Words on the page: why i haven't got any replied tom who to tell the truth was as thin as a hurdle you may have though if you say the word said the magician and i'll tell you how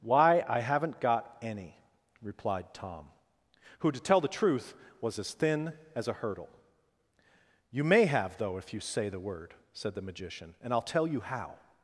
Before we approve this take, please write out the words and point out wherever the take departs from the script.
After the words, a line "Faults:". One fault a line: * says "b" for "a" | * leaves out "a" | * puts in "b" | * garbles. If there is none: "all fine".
why i haven't got any replied tom who to tell the truth was as thin as a hurdle you may have though if you say the word said the magician and i'll tell you how
Faults:
all fine